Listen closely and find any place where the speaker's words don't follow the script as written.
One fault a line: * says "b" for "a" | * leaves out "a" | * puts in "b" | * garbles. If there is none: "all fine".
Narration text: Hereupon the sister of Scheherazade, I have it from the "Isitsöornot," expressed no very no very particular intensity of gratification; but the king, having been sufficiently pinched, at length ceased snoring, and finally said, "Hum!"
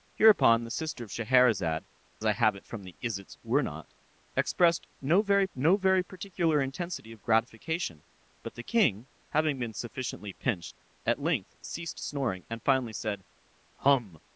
all fine